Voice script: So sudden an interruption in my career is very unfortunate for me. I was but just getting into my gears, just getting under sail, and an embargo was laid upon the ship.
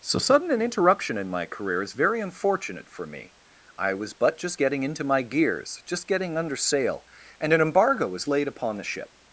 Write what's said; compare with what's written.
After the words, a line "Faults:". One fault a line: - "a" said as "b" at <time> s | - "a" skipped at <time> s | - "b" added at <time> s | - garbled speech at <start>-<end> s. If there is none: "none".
So sudden an interruption in my career is very unfortunate for me. I was but just getting into my gears, just getting under sail, and an embargo was laid upon the ship.
Faults:
none